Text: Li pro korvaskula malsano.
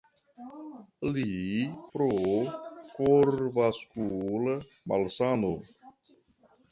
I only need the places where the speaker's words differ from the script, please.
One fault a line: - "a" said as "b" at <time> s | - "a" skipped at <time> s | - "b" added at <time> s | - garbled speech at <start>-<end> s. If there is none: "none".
none